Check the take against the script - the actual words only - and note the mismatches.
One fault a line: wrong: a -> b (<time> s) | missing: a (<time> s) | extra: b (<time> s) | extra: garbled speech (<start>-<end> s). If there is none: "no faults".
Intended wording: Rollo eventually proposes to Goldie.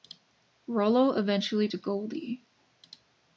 missing: proposes (1.7 s)